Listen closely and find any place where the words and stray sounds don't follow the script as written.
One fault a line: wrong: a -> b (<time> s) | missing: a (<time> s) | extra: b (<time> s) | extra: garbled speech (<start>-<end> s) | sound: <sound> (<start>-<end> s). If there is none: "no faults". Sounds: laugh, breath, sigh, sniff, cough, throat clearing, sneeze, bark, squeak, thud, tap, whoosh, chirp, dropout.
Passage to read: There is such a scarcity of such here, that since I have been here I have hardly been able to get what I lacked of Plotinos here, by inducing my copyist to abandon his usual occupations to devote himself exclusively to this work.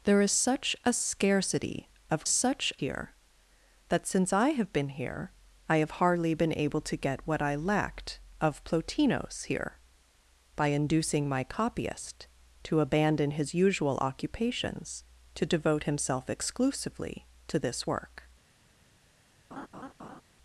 sound: laugh (19.5-20.2 s)